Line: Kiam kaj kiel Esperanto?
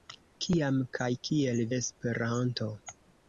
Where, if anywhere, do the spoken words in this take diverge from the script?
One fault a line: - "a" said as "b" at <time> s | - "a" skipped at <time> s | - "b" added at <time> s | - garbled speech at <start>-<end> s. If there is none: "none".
none